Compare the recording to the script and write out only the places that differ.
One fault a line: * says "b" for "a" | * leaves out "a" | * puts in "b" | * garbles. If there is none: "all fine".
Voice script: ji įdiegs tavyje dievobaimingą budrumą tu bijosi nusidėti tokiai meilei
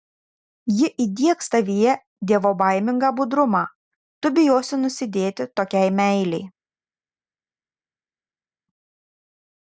all fine